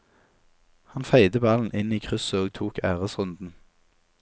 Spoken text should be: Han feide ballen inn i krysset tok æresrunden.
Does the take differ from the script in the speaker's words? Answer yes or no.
yes